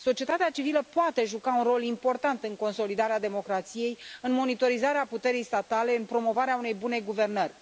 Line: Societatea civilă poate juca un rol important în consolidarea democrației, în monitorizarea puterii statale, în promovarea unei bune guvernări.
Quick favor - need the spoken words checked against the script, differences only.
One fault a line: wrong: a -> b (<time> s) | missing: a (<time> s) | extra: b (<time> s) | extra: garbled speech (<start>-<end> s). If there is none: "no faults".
no faults